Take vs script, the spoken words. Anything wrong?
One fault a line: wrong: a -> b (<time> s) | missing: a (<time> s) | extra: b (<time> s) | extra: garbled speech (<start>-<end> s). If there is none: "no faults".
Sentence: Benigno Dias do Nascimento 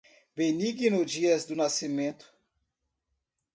no faults